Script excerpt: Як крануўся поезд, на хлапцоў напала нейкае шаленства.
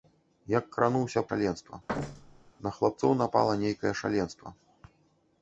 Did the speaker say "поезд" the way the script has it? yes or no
no